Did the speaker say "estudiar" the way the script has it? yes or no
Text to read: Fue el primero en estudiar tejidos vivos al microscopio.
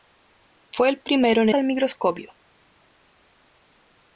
no